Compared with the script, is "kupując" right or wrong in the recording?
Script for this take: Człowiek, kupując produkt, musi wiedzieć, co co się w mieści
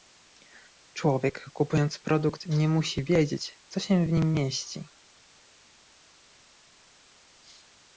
right